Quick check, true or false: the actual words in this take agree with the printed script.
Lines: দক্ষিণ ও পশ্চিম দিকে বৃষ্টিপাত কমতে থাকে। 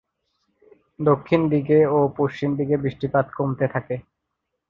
false